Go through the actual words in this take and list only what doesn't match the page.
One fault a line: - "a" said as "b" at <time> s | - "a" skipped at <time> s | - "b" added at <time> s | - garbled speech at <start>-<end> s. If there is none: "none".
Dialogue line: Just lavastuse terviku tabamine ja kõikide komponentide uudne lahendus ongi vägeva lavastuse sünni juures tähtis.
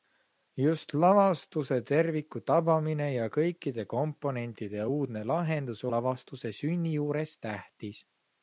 - "ongi vägeva" skipped at 5.8 s